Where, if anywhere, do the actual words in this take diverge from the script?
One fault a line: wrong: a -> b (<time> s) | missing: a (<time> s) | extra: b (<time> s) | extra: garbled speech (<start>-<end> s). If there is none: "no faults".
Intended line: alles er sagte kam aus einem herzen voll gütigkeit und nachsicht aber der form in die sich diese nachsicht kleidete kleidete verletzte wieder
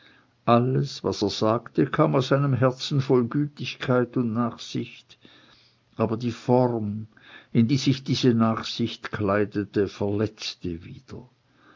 extra: was (1.0 s)
wrong: der -> die (6.2 s)
missing: kleidete (9.9 s)